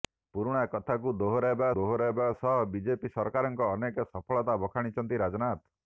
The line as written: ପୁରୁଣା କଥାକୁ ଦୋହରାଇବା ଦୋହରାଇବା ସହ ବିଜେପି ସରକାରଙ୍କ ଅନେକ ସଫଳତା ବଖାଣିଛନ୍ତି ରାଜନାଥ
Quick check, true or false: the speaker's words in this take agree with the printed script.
true